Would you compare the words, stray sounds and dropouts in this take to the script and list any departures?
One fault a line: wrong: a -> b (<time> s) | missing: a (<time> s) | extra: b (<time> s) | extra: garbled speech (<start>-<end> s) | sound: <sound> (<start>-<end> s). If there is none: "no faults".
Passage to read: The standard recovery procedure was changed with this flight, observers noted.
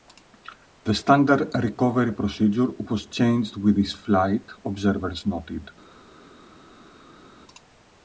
no faults